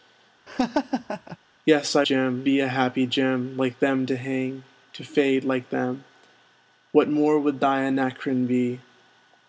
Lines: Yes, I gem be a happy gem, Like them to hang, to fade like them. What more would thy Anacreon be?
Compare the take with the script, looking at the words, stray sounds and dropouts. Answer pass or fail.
fail